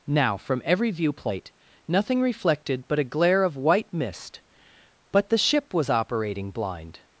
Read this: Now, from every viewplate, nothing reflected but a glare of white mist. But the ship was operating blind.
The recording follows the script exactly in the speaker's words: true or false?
true